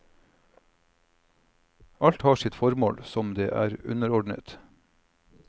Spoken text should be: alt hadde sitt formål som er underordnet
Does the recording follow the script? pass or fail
fail